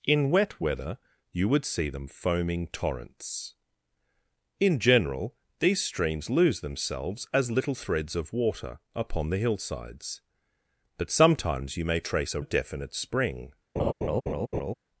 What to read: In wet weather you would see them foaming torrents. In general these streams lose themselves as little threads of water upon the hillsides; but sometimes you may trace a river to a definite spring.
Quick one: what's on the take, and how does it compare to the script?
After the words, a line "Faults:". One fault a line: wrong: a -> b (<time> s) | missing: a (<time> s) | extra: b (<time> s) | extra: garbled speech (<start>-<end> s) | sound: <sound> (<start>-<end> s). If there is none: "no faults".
In wet weather you would see them foaming torrents. In general these streams lose themselves as little threads of water upon the hillsides; but sometimes you may trace a a definite spring.
Faults:
missing: river to (12.4 s)
sound: laugh (13.8-14.7 s)